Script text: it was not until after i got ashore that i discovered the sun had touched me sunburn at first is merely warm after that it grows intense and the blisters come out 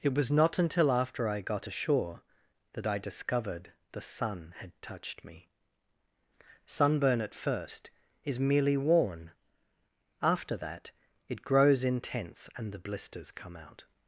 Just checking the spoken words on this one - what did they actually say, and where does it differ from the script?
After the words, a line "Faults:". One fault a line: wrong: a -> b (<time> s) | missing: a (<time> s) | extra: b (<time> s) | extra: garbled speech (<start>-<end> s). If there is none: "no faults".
it was not until after i got ashore that i discovered the sun had touched me sunburn at first is merely worn after that it grows intense and the blisters come out
Faults:
wrong: warm -> worn (8.8 s)